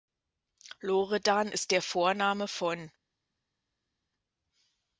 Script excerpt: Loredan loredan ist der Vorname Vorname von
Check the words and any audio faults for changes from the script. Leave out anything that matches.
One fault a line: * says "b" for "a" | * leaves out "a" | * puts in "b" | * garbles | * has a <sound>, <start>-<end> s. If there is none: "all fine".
* leaves out "loredan"
* leaves out "Vorname"